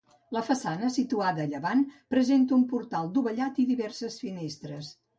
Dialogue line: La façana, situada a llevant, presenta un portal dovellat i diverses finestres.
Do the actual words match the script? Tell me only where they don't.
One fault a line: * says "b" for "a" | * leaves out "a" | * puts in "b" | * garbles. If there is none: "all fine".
all fine